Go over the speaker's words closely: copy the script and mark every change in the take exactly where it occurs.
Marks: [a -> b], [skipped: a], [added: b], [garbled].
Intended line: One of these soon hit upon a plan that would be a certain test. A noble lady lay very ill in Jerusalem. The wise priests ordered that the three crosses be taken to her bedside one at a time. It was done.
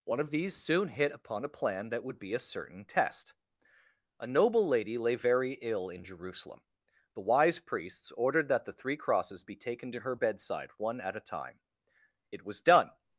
One of these soon hit upon a plan that would be a certain test. A noble lady lay very ill in Jerusalem. The wise priests ordered that the three crosses be taken to her bedside one at a time. It was done.